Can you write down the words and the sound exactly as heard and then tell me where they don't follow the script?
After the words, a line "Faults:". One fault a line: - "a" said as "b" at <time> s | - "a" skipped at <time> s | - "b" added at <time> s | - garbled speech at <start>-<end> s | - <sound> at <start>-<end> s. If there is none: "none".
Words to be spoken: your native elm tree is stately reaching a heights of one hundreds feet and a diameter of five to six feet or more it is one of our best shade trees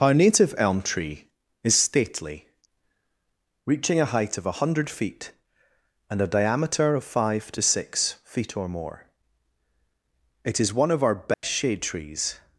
our native elm tree is stately reaching a height of one hundred feet and a diameter of five to six feet or more it is one of our best shade trees
Faults:
- "your" said as "our" at 0.0 s
- "heights" said as "height" at 4.1 s
- "hundreds" said as "hundred" at 4.5 s
- dropout at 11.3-11.4 s